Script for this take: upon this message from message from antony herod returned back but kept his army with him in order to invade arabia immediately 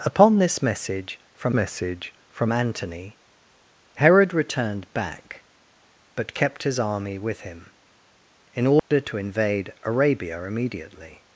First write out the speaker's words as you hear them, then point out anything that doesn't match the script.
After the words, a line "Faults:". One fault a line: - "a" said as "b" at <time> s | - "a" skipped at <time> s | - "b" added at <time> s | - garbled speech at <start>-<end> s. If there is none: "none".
upon this message from message from antony herod returned back but kept his army with him in order to invade arabia immediately
Faults:
none